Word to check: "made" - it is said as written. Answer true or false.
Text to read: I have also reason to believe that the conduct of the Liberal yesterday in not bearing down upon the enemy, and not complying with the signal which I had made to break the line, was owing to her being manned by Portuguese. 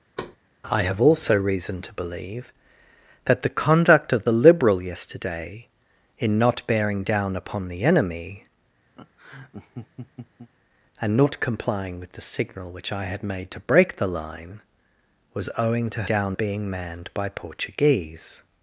true